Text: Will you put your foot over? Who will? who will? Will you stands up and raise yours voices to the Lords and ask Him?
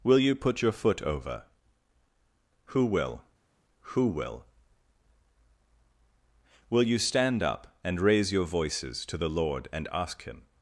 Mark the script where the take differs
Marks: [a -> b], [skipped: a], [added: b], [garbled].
Will you put your foot over? Who will? who will? Will you [stands -> stand] up and raise [yours -> your] voices to the [Lords -> Lord] and ask Him?